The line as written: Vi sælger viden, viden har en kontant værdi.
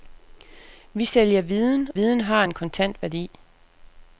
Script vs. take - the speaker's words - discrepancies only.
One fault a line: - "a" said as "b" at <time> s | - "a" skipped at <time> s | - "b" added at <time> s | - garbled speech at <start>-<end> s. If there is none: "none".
none